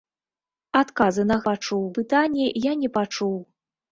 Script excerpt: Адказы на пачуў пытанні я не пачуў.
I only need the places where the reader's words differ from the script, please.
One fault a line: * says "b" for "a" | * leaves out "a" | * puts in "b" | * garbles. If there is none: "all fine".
all fine